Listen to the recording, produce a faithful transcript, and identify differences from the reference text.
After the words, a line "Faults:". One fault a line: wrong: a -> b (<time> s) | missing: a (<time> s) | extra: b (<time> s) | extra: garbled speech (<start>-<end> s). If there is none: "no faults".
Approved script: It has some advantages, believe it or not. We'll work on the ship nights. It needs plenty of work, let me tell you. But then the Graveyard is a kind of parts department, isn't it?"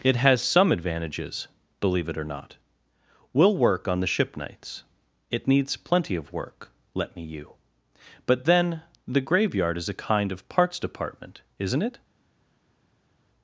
It has some advantages, believe it or not. We'll work on the ship nights. It needs plenty of work, let me you. But then the Graveyard is a kind of parts department, isn't it?"
Faults:
missing: tell (7.2 s)